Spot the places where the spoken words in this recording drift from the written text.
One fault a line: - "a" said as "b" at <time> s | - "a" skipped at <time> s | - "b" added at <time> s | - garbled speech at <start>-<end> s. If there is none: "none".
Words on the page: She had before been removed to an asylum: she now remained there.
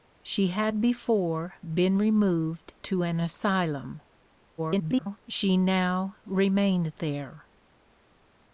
- garbled speech at 4.6-5.2 s